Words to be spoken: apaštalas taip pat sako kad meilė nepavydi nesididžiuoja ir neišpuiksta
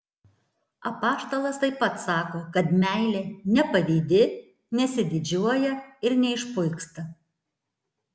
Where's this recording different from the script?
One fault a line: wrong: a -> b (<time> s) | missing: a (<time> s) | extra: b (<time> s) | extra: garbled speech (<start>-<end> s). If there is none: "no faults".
no faults